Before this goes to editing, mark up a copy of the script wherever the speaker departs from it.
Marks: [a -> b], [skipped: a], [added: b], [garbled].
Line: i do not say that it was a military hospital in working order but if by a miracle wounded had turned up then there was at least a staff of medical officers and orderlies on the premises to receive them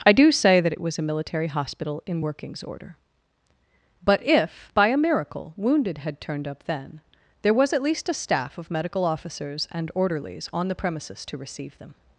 i do [skipped: not] say that it was a military hospital in [working -> workings] order but if by a miracle wounded had turned up then there was at least a staff of medical officers and orderlies on the premises to receive them